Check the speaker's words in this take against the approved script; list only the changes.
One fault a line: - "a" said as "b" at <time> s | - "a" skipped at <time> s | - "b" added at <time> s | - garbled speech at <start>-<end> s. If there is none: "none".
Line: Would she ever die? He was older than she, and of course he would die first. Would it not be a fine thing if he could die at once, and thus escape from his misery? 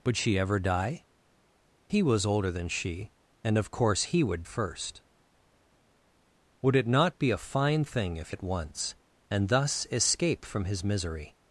- "die" skipped at 4.4 s
- "he could die" skipped at 8.3 s